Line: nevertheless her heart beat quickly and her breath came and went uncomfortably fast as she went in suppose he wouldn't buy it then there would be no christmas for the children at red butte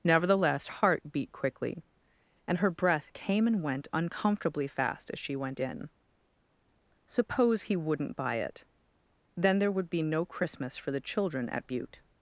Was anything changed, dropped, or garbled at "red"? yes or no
yes